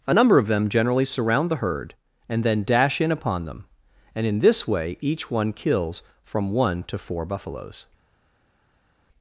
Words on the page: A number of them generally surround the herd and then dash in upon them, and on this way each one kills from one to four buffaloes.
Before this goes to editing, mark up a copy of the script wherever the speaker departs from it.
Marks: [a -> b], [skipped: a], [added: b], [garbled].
A number of them generally surround the herd and then dash in upon them, and [on -> in] this way each one kills from one to four buffaloes.